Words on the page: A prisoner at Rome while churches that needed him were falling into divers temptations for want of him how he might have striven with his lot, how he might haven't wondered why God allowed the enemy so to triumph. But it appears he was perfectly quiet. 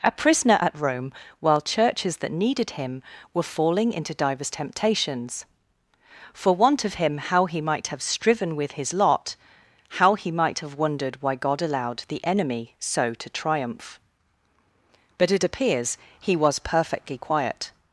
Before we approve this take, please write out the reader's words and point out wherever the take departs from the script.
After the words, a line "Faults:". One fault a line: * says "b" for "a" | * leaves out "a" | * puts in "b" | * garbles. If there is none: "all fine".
A prisoner at Rome while churches that needed him were falling into divers temptations for want of him how he might have striven with his lot, how he might have wondered why God allowed the enemy so to triumph. But it appears he was perfectly quiet.
Faults:
* says "have" for "haven't"